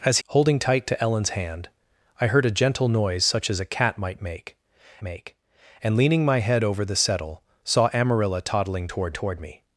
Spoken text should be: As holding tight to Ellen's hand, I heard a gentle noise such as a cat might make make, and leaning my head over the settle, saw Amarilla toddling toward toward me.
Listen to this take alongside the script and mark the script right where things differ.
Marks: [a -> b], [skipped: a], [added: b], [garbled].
As holding tight to Ellen's hand, I heard a gentle noise such as a cat might make make, and leaning my head over the settle, saw Amarilla toddling toward toward me.